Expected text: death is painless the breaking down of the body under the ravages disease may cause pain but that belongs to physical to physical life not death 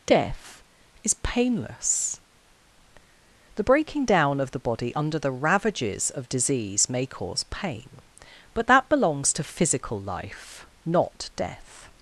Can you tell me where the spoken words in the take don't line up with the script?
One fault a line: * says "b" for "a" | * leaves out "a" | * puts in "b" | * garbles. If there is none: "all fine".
* puts in "of"
* leaves out "to physical"